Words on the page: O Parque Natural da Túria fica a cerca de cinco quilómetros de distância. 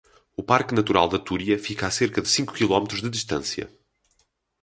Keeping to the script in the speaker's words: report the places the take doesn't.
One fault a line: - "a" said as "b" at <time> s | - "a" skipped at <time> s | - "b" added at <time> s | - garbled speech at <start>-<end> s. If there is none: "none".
none